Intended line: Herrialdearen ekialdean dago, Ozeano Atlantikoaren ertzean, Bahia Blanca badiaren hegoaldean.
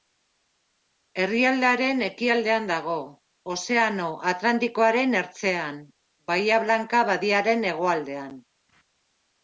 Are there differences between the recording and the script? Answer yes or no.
no